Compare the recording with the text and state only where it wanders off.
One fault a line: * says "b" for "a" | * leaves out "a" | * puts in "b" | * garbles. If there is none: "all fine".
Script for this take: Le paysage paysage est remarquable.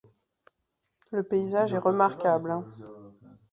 * leaves out "paysage"